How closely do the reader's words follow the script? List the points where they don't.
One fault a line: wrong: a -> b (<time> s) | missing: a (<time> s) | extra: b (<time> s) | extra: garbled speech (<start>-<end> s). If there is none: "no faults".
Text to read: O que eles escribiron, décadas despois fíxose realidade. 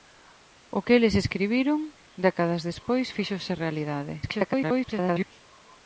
extra: garbled speech (4.2-5.3 s)